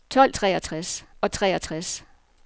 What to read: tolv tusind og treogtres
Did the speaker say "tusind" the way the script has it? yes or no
no